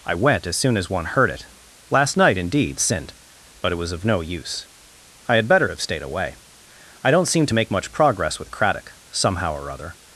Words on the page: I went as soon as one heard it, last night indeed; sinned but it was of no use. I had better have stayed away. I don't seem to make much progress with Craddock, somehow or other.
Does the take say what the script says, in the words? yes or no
yes